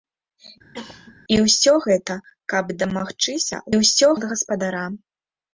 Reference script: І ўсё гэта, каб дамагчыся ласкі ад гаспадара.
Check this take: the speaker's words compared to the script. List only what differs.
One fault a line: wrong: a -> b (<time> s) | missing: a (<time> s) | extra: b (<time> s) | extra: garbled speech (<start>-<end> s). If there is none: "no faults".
wrong: ласкі -> ўсё (3.8 s)